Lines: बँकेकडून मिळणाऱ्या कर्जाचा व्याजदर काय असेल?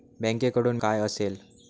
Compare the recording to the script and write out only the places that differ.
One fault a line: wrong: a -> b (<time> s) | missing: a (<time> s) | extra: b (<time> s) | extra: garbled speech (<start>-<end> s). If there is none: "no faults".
missing: मिळणाऱ्या कर्जाचा व्याजदर (0.8 s)